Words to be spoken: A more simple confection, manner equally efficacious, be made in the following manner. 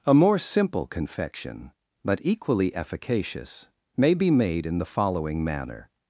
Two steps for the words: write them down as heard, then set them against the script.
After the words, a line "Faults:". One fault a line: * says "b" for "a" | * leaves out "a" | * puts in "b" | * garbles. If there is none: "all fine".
A more simple confection, but equally efficacious, may be made in the following manner.
Faults:
* says "but" for "manner"
* puts in "may"